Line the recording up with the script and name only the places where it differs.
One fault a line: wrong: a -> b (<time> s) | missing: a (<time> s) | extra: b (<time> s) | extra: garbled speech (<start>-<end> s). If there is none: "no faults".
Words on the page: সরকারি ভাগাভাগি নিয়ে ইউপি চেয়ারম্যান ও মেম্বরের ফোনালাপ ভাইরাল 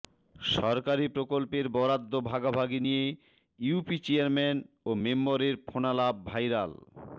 extra: প্রকল্পের বরাদ্দ (1.1 s)